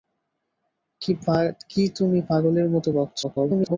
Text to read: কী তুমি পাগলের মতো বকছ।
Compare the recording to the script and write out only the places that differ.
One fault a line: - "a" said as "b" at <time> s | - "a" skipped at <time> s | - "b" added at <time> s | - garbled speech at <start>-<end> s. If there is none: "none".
- garbled speech at 3.2-3.8 s